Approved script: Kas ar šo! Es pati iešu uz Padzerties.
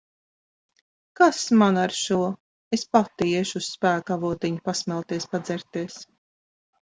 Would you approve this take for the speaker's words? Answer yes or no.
no